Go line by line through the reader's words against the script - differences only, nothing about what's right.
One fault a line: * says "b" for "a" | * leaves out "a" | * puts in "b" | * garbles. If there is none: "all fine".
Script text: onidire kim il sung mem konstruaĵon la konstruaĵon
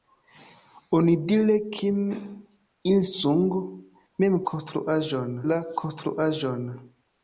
all fine